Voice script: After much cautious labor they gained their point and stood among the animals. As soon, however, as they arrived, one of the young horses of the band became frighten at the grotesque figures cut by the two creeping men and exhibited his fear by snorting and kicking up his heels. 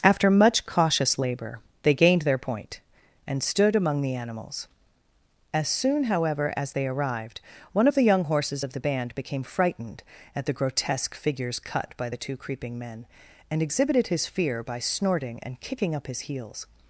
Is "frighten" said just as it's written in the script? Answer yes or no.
no